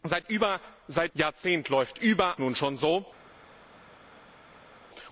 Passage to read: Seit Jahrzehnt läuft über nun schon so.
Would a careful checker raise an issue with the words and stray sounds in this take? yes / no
no